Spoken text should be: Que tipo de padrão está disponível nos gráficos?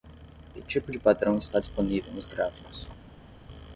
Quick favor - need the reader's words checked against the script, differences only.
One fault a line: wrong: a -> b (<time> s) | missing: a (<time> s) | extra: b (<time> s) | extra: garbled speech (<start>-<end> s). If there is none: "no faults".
no faults